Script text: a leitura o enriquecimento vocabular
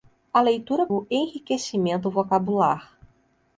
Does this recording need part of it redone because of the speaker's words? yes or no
no